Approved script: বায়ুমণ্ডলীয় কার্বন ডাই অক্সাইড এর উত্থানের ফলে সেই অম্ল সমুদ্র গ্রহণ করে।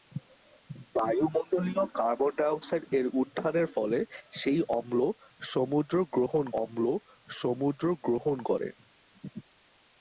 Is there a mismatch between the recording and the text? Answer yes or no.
yes